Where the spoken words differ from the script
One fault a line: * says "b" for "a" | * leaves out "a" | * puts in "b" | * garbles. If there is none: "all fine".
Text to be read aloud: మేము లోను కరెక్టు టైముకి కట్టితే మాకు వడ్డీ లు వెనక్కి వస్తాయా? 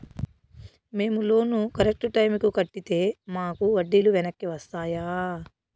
all fine